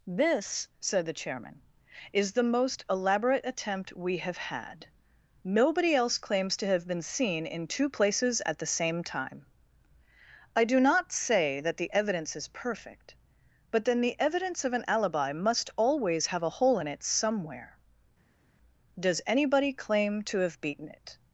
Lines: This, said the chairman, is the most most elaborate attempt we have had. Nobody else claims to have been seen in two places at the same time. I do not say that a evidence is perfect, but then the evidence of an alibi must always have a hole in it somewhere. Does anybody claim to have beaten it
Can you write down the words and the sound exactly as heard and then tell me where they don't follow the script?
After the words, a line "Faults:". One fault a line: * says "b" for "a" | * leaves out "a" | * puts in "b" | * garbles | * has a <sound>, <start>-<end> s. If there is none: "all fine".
This, said the chairman, is the most elaborate attempt we have had. Nobody else claims to have been seen in two places at the same time. I do not say that the evidence is perfect, but then the evidence of an alibi must always have a hole in it somewhere. Does anybody claim to have beaten it
Faults:
* leaves out "most"
* says "the" for "a"